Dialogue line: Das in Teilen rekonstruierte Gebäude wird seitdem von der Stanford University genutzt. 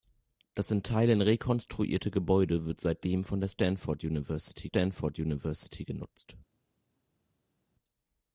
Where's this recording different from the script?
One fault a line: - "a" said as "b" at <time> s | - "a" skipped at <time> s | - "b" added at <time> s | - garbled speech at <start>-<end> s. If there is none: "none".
- "Stanford University" added at 4.6 s